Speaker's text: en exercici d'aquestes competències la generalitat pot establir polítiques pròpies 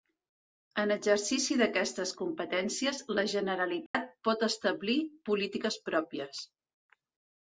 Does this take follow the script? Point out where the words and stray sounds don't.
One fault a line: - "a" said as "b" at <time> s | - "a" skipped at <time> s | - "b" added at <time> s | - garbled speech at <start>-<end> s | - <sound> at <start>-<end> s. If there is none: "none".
- dropout at 3.9-3.9 s